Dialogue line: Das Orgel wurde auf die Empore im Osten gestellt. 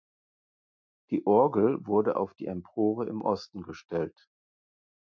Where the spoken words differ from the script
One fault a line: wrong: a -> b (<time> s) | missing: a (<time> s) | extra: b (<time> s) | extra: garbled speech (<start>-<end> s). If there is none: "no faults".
wrong: Das -> Die (1.1 s)